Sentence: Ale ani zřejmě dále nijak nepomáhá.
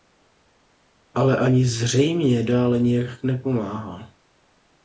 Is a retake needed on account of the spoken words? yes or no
no